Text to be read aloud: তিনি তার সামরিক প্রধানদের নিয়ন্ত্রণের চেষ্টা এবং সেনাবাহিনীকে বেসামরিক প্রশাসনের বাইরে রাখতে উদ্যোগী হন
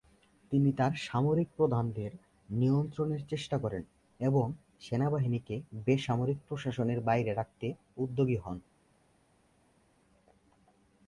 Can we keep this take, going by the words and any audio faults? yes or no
no